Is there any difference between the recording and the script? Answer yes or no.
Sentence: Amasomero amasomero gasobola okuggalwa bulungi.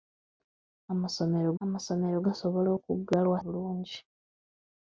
no